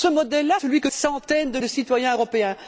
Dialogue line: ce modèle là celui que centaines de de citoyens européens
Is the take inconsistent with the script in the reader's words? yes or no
no